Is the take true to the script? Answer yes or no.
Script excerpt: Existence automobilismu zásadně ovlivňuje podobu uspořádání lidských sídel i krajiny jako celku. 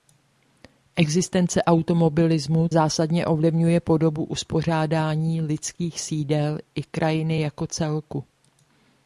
yes